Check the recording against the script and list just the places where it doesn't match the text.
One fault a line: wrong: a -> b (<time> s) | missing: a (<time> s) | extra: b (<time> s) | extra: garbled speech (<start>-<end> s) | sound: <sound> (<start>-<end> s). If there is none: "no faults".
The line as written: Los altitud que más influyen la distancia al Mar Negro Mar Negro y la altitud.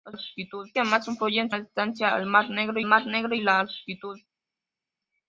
no faults